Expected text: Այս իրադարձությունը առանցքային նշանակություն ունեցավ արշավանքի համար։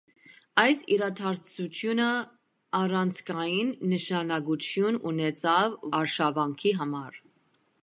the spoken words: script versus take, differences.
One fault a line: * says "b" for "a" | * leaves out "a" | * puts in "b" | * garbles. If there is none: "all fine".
all fine